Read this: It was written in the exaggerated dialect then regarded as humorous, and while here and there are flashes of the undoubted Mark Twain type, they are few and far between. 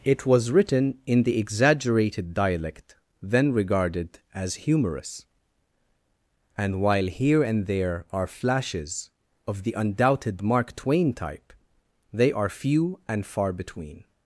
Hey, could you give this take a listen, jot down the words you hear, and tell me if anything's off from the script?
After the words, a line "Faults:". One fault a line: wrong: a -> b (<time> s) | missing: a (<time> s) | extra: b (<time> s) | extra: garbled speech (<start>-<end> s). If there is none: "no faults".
It was written in the exaggerated dialect then regarded as humorous, and while here and there are flashes of the undoubted Mark Twain type, they are few and far between.
Faults:
no faults